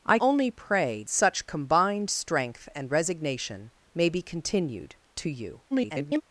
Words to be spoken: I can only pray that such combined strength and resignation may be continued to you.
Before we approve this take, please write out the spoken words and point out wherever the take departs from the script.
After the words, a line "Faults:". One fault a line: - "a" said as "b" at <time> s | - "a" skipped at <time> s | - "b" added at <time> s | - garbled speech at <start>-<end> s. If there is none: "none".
I only pray such combined strength and resignation may be continued to you. [garbled]
Faults:
- "can" skipped at 0.2 s
- "that" skipped at 1.0 s
- garbled speech at 5.7-6.2 s